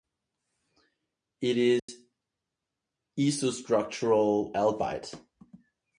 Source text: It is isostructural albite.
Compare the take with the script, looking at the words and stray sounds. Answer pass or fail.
fail